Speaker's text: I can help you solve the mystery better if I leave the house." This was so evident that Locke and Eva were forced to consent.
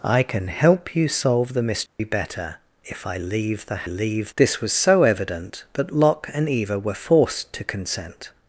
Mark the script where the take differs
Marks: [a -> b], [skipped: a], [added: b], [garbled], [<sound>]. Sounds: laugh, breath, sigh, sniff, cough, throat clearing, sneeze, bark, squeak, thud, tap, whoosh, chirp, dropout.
I can help you solve the mystery [dropout] better if I leave the [house." -> leave] This was so evident that Locke and Eva were forced to consent.